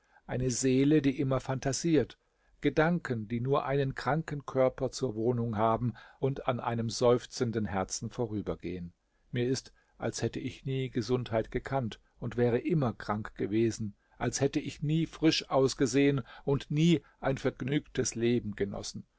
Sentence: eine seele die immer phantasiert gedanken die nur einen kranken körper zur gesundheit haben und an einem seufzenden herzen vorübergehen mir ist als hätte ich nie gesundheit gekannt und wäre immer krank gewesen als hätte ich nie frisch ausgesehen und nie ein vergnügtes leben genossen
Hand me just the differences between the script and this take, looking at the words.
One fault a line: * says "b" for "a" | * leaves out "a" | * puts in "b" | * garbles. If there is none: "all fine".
* says "wohnung" for "gesundheit"